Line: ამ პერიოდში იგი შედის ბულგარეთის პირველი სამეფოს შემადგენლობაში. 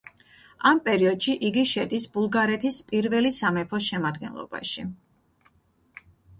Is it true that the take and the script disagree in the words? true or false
false